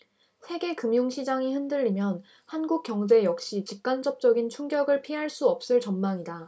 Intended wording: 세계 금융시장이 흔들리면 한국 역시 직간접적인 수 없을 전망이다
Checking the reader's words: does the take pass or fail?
fail